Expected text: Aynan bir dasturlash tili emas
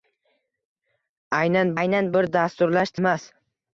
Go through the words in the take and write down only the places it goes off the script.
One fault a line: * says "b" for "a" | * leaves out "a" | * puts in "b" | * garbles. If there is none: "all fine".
* puts in "aynan"
* leaves out "tili"